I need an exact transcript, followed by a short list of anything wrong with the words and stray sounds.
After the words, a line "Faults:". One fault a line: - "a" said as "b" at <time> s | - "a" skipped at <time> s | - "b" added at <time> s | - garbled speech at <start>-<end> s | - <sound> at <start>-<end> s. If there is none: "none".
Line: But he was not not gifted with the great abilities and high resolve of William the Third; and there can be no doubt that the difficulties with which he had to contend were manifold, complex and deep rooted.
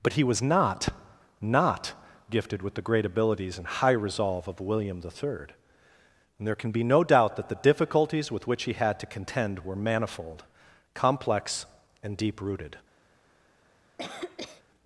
But he was not not gifted with the great abilities and high resolve of William the Third; and there can be no doubt that the difficulties with which he had to contend were manifold, complex and deep rooted.
Faults:
- cough at 14.0-14.6 s